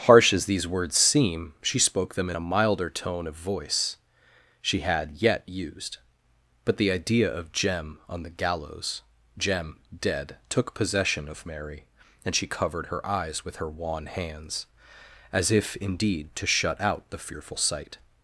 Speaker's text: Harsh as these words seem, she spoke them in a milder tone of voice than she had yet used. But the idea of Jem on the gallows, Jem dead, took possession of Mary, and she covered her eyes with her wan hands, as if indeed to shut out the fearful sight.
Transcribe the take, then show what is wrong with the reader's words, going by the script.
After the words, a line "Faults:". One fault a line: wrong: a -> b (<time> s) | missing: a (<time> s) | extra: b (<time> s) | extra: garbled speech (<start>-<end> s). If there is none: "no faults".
Harsh as these words seem, she spoke them in a milder tone of voice she had yet used. But the idea of Jem on the gallows, Jem dead, took possession of Mary, and she covered her eyes with her wan hands, as if indeed to shut out the fearful sight.
Faults:
missing: than (4.0 s)